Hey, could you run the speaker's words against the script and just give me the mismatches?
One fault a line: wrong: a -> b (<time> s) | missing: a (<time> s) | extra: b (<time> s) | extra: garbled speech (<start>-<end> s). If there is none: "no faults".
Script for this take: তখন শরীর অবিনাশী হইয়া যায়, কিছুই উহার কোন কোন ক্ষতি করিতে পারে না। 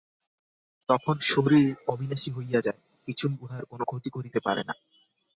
missing: কোন (3.8 s)